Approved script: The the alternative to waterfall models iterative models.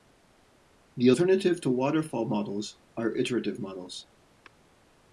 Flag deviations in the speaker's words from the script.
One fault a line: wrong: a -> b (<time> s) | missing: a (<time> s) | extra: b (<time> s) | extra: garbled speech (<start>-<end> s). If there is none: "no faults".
missing: the (1.1 s)
extra: are (3.0 s)